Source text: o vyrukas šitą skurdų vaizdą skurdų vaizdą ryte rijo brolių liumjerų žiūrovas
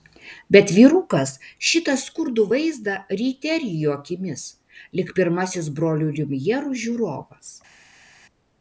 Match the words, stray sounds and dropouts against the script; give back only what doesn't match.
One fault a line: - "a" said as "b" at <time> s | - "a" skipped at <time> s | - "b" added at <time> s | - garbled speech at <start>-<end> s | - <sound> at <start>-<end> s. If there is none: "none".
- "o" said as "bet" at 0.6 s
- "skurdų vaizdą ryte rijo" said as "ryte rijo akimis lyg pirmasis" at 3.2 s